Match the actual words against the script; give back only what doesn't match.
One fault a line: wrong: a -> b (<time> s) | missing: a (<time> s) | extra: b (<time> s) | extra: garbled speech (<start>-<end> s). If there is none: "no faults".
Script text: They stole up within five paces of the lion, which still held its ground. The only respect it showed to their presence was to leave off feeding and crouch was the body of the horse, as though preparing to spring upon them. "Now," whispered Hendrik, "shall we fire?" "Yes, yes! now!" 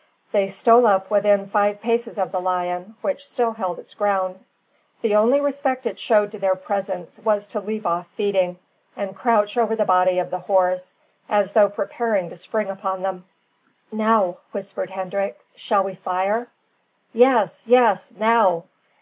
wrong: was -> over (9.6 s)